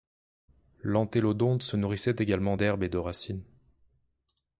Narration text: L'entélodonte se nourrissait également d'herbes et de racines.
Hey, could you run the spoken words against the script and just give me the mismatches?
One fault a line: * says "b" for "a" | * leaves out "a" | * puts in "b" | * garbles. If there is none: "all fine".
all fine